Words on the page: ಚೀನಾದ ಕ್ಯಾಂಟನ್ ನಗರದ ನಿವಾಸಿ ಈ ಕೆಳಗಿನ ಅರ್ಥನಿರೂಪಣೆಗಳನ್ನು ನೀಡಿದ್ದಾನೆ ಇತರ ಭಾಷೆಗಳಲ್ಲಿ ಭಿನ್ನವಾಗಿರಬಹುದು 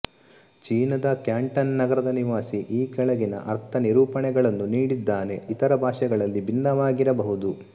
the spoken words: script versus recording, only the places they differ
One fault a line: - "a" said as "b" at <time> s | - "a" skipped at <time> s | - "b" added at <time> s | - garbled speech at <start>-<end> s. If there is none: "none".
none